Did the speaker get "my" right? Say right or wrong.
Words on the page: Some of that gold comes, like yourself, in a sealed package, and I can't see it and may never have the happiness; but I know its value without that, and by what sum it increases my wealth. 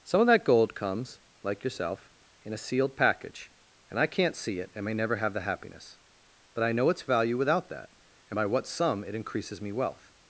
wrong